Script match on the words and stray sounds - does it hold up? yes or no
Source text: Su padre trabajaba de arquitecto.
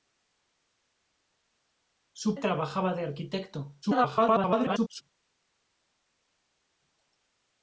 no